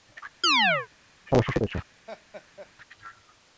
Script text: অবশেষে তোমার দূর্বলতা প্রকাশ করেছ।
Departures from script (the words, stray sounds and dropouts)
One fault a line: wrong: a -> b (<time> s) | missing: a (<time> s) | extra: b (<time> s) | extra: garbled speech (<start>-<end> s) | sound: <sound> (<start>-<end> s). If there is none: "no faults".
sound: chirp (0.4-0.9 s)
missing: তোমার দূর্বলতা প্রকাশ (1.6 s)
sound: laugh (2.1-2.7 s)